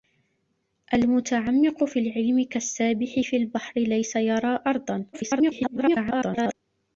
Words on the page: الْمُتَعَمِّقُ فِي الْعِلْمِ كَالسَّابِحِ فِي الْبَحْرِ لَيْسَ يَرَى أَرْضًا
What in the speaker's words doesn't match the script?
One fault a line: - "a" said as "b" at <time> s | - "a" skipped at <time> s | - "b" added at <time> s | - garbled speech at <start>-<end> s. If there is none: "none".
- garbled speech at 5.1-6.5 s